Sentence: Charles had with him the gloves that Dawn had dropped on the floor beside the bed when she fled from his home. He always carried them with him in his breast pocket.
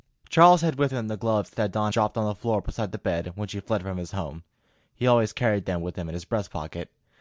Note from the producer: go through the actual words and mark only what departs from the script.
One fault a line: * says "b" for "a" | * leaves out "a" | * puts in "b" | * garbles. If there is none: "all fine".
* leaves out "had"